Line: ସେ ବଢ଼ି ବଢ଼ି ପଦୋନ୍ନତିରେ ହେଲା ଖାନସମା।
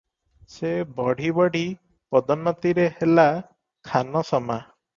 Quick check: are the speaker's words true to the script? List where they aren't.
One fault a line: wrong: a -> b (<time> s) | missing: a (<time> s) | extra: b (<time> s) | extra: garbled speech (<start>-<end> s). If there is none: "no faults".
no faults